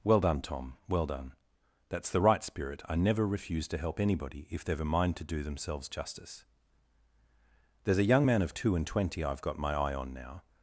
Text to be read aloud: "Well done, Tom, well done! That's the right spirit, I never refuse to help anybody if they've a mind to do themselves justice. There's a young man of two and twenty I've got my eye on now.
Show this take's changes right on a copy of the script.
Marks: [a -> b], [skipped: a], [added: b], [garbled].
"Well done, Tom, well done! That's the right spirit, I never refuse to help anybody if they've a mind to do themselves justice. There's a young man of two and twenty I've got my eye on now.